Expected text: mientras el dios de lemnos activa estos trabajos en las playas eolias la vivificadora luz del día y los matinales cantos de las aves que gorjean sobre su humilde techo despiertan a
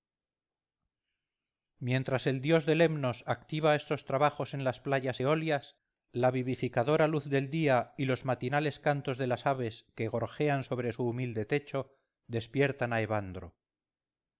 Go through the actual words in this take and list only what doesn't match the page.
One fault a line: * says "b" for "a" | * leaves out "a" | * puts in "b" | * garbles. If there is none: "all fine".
all fine